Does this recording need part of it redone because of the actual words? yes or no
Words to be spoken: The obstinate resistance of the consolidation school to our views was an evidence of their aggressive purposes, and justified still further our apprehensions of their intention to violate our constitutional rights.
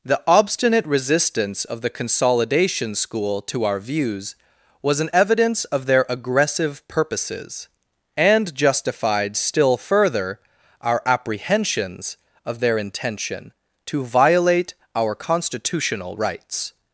no